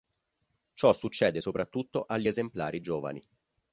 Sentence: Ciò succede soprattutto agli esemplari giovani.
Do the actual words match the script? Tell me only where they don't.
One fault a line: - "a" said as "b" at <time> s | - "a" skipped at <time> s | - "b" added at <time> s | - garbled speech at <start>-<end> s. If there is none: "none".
none